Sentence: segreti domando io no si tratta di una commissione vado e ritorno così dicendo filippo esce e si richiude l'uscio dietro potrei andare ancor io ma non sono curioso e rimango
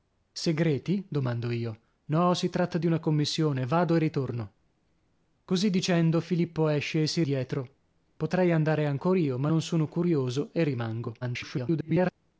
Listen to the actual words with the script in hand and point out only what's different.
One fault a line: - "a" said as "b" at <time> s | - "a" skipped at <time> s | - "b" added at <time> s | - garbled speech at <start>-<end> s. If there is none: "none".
- "richiude l'uscio" skipped at 7.2 s
- garbled speech at 11.2-12.1 s